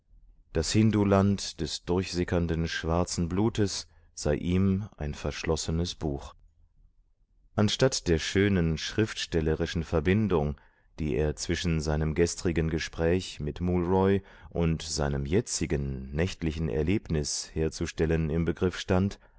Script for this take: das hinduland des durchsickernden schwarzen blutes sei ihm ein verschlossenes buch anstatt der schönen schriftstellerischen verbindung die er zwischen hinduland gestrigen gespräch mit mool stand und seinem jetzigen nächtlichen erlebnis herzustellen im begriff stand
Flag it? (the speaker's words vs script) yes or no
yes